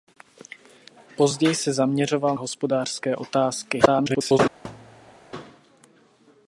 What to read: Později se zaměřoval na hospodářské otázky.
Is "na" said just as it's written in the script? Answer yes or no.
no